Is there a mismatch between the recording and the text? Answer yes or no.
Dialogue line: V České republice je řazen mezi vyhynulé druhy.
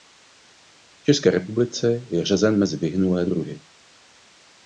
no